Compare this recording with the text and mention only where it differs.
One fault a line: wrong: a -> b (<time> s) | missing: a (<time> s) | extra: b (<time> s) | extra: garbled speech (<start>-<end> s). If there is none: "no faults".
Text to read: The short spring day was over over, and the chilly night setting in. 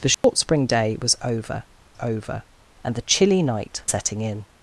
no faults